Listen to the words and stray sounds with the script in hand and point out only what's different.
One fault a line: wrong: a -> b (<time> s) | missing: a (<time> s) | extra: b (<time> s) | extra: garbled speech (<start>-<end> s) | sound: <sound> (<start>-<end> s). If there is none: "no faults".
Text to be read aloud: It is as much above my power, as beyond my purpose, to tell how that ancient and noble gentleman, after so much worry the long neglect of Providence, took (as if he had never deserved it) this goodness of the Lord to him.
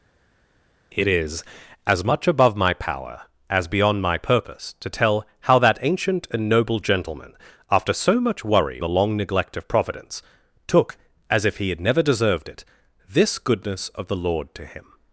no faults